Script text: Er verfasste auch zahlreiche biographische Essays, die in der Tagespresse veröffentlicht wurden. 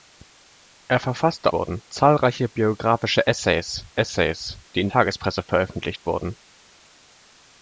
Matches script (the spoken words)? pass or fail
fail